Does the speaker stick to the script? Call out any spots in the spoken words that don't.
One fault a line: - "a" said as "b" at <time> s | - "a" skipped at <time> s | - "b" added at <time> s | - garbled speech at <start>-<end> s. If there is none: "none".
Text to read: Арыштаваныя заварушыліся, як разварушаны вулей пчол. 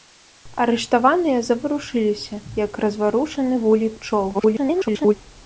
- garbled speech at 4.3-5.1 s